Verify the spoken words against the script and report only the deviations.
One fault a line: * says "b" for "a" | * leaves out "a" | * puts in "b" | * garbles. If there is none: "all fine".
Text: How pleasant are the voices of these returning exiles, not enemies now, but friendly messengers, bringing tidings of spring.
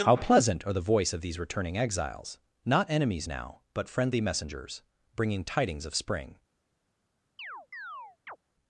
* says "voice" for "voices"